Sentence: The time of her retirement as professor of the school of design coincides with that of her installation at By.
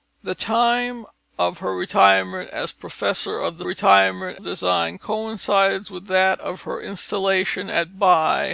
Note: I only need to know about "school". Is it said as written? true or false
false